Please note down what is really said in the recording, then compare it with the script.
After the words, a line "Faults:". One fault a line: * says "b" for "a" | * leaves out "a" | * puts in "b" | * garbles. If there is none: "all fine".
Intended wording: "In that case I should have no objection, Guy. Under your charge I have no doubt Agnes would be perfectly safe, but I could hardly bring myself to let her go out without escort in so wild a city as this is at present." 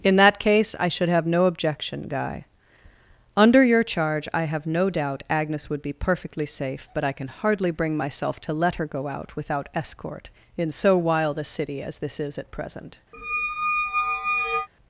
"In that case I should have no objection, Guy. Under your charge I have no doubt Agnes would be perfectly safe, but I can hardly bring myself to let her go out without escort in so wild a city as this is at present."
Faults:
* says "can" for "could"